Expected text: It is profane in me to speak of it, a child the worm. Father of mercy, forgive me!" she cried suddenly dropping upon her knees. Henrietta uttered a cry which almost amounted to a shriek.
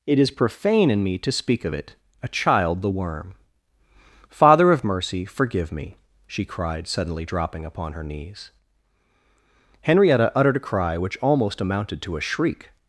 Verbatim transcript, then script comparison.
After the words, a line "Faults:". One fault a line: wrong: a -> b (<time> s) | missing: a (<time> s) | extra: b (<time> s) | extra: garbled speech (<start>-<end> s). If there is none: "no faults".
It is profane in me to speak of it, a child the worm. Father of mercy, forgive me!" she cried suddenly dropping upon her knees. Henrietta uttered a cry which almost amounted to a shriek.
Faults:
no faults